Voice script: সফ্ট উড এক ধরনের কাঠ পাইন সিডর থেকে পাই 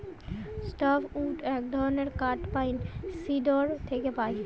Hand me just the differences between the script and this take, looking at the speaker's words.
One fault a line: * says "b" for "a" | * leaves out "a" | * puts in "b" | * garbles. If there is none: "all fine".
all fine